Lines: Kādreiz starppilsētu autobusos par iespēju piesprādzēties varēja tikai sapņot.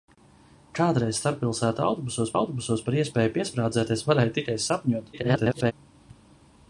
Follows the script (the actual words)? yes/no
no